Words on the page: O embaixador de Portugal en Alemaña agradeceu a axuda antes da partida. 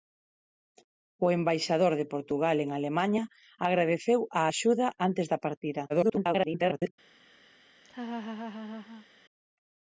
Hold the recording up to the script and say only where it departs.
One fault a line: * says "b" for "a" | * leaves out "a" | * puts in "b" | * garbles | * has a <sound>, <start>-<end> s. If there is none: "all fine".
* garbles
* has a laugh, 7.8-9.1 s